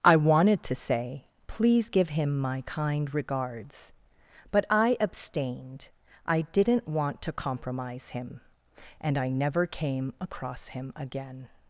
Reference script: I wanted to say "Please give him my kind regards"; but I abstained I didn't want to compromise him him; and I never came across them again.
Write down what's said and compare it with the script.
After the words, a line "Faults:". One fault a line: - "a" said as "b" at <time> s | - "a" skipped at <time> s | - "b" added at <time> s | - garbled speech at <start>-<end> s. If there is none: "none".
I wanted to say "Please give him my kind regards"; but I abstained I didn't want to compromise him; and I never came across him again.
Faults:
- "him" skipped at 8.4 s
- "them" said as "him" at 10.7 s